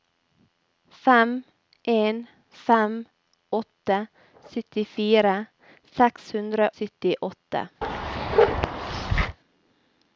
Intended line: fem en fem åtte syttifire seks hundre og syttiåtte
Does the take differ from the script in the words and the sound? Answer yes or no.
yes